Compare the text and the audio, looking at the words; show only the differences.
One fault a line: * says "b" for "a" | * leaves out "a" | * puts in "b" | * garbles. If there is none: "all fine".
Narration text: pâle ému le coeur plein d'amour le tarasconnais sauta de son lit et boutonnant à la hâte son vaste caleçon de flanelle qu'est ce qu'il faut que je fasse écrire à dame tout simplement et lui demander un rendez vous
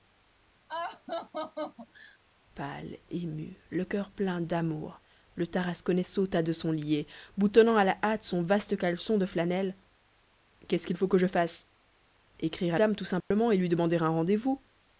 all fine